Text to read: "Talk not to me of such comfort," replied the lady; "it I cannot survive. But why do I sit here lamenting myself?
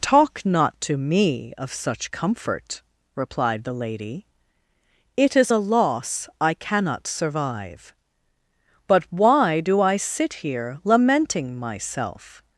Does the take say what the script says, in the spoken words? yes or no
no